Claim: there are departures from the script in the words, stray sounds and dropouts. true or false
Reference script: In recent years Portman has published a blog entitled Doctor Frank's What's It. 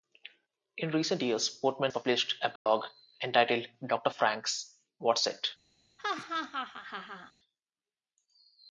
true